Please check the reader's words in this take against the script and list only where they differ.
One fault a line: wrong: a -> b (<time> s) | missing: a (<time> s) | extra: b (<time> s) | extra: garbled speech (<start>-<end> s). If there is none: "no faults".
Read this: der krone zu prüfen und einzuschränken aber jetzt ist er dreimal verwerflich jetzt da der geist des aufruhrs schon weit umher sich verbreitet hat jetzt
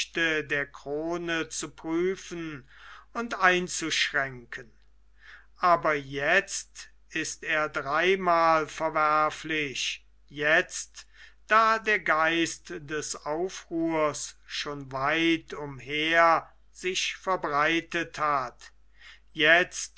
no faults